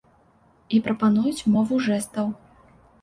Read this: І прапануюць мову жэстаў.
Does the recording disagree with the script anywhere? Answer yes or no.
no